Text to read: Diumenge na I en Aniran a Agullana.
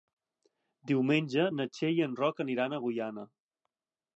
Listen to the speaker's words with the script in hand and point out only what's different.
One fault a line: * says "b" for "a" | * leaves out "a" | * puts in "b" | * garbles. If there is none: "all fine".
* puts in "Txell"
* puts in "Roc"